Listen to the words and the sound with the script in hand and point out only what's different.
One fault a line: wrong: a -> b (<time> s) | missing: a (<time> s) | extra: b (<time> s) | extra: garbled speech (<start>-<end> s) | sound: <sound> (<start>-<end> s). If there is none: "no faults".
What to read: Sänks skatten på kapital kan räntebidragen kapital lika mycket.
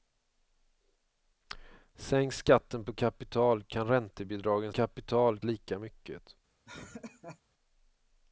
sound: laugh (6.6-7.4 s)